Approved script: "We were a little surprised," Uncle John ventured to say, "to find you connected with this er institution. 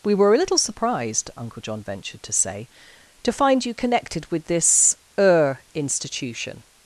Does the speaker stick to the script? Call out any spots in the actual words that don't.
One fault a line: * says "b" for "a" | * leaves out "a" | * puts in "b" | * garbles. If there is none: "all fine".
all fine